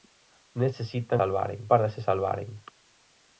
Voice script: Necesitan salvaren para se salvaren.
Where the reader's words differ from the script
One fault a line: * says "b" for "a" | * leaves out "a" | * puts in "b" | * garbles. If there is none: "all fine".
all fine